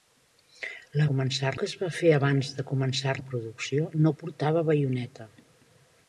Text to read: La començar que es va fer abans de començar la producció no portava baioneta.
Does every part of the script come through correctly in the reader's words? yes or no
yes